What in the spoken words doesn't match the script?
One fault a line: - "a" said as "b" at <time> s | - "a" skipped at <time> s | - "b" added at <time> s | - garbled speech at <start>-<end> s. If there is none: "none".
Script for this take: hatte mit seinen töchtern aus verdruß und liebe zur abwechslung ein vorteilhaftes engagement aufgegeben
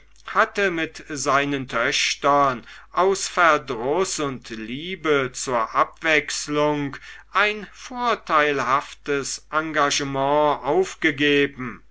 none